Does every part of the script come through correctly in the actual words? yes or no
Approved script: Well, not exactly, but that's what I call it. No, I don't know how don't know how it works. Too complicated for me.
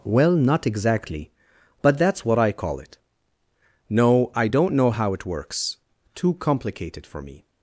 no